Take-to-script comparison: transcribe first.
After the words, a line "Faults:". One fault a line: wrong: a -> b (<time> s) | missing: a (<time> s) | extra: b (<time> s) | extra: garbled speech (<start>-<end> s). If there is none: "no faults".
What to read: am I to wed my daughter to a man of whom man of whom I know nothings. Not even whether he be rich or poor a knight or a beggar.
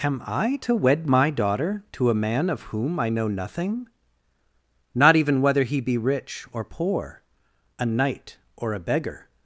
am I to wed my daughter to a man of whom I know nothing. Not even whether he be rich or poor a knight or a beggar.
Faults:
missing: man of whom (3.0 s)
wrong: nothings -> nothing (3.3 s)